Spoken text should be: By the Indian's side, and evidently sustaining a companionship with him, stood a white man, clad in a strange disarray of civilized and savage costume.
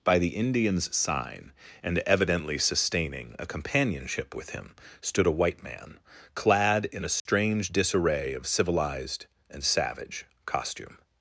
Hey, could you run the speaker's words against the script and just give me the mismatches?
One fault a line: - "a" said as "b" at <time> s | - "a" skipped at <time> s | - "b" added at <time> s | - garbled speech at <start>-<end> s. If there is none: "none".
- "side" said as "sign" at 0.9 s